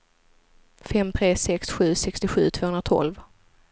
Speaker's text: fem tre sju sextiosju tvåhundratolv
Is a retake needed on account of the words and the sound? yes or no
yes